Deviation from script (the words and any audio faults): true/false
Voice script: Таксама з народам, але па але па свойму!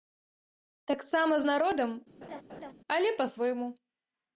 true